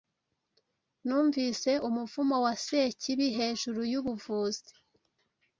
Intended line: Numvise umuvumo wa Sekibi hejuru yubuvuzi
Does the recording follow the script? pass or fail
pass